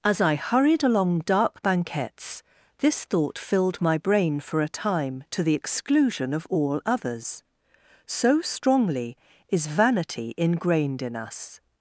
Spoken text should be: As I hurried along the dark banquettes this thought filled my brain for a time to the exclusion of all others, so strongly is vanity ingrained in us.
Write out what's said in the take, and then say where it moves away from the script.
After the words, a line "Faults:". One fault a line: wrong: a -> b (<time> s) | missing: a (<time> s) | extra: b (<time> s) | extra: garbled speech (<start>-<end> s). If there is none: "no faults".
As I hurried along dark banquettes this thought filled my brain for a time to the exclusion of all others, so strongly is vanity ingrained in us.
Faults:
missing: the (1.2 s)